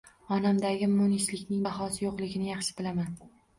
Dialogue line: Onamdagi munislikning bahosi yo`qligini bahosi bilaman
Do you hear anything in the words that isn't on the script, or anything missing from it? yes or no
yes